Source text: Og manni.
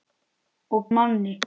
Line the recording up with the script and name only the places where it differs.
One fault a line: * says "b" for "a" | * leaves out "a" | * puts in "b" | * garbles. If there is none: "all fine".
all fine